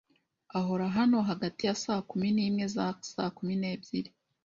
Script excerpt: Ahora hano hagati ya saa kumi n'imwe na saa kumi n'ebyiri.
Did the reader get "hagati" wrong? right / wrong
right